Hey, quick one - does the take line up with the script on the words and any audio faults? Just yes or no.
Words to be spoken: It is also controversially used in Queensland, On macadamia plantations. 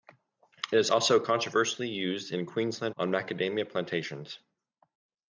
yes